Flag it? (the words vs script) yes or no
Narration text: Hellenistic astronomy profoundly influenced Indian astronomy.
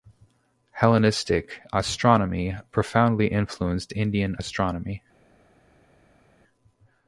no